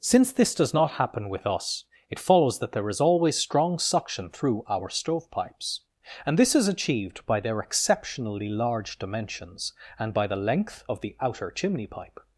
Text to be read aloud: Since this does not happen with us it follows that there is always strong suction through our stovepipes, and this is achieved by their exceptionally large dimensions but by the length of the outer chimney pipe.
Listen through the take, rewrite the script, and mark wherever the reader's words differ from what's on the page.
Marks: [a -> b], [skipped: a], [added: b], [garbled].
Since this does not happen with us it follows that there is always strong suction through our stovepipes, and this is achieved by their exceptionally large dimensions [but -> and] by the length of the outer chimney pipe.